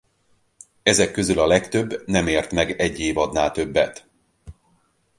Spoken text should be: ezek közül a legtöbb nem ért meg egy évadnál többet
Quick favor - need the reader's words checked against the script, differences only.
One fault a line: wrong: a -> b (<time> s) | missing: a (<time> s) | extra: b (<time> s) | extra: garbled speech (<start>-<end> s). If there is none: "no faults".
no faults